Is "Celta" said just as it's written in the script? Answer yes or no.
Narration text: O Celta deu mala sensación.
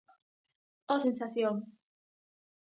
no